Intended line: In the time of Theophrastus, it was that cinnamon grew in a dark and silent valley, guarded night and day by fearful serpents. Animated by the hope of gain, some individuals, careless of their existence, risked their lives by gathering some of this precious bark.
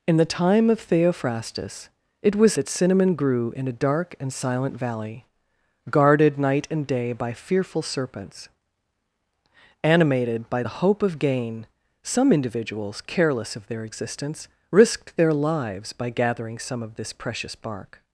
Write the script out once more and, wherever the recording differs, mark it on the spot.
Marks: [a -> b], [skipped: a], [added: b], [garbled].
In the time of Theophrastus, it was that cinnamon grew in a dark and silent valley, guarded night and day by fearful serpents. Animated by the hope of gain, some individuals, careless of their existence, risked their lives by gathering some of this precious bark.